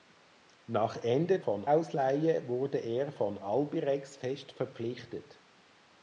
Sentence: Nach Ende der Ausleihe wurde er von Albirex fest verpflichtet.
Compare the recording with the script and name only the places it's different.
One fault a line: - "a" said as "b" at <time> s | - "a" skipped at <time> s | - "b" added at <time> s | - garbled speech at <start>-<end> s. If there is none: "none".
- "der" said as "von" at 1.4 s